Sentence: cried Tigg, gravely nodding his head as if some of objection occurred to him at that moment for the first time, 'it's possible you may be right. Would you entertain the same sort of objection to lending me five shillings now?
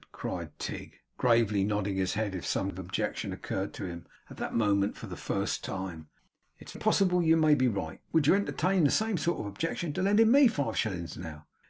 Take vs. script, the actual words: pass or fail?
pass